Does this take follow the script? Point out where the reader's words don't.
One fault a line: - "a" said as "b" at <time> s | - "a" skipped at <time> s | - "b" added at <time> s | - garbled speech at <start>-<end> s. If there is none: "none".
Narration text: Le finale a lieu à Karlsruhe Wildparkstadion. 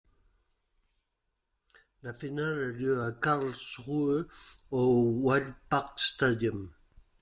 - "Le" said as "La" at 2.0 s
- "au" added at 4.7 s